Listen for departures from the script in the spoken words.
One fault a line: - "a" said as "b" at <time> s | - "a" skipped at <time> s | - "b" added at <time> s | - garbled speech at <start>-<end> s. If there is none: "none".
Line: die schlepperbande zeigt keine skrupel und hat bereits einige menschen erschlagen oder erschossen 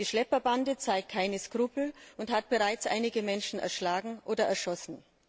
none